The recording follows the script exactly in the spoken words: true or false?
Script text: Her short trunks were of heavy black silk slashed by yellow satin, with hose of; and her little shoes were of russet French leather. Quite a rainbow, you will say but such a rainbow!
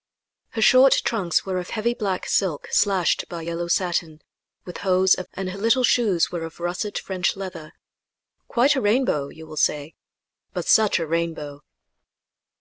true